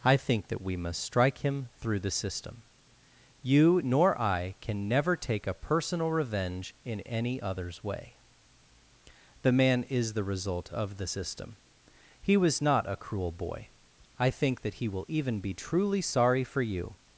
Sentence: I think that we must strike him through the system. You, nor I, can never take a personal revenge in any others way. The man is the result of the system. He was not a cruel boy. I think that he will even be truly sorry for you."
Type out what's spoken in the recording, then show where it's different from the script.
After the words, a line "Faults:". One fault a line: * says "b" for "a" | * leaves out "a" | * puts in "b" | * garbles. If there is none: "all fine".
I think that we must strike him through the system. You, nor I, can never take a personal revenge in any others way. The man is the result of the system. He was not a cruel boy. I think that he will even be truly sorry for you."
Faults:
all fine